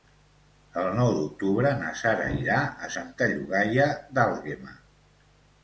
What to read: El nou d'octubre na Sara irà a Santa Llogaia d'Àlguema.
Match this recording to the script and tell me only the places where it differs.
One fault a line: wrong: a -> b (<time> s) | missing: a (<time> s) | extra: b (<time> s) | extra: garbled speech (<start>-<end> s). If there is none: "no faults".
no faults